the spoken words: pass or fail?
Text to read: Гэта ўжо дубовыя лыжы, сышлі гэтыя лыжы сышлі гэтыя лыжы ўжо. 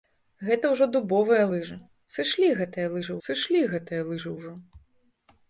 pass